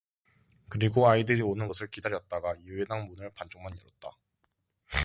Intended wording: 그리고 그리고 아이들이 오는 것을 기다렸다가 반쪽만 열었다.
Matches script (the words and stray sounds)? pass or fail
fail